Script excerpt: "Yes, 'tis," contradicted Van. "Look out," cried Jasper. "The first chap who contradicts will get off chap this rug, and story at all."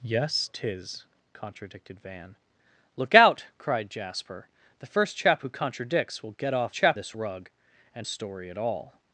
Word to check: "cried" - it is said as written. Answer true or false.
true